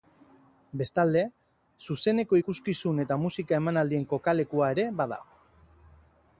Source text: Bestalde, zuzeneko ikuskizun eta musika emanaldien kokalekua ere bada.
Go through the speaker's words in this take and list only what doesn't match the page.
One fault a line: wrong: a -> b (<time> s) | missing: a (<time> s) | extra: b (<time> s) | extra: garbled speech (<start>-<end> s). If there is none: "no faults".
no faults